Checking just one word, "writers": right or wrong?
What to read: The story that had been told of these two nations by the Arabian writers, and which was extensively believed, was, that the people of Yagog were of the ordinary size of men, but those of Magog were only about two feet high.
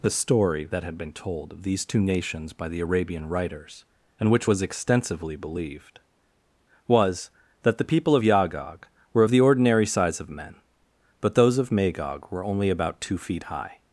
right